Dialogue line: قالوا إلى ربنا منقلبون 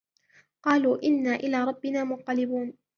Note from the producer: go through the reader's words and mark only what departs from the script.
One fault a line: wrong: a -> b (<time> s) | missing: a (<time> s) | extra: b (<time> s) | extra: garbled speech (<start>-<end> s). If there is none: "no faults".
extra: إنا (1.0 s)